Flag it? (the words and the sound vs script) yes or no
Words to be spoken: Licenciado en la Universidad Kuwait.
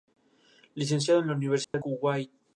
yes